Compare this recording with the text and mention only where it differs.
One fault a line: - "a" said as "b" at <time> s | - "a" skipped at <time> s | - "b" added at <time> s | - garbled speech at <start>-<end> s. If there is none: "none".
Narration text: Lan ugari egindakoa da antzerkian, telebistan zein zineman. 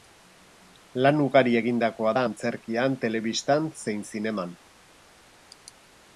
none